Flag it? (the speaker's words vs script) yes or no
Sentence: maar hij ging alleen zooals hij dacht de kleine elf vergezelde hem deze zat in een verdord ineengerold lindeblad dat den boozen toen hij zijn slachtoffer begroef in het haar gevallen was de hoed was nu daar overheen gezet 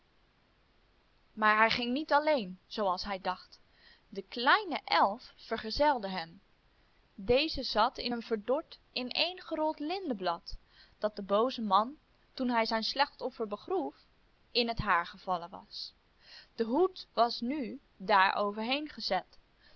yes